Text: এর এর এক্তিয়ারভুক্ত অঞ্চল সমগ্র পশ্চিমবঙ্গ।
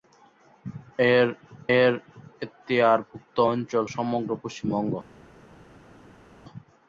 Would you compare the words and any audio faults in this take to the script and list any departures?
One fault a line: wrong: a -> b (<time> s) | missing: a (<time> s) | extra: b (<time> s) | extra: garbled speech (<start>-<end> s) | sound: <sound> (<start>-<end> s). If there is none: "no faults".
no faults